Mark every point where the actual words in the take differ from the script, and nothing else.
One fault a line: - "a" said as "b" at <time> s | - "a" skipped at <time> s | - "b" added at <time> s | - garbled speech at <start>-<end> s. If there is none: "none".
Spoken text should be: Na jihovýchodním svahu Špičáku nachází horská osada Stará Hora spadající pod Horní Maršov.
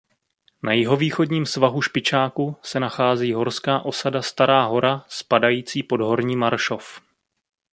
- "se" added at 2.6 s